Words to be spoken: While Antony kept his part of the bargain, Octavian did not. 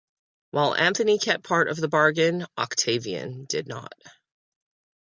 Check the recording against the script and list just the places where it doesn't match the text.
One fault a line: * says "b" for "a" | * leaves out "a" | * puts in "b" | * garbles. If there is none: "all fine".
* leaves out "his"